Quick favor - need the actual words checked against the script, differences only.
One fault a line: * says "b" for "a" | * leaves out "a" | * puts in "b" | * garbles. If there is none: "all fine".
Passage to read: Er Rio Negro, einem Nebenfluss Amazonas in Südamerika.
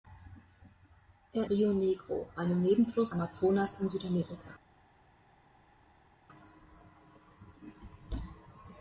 all fine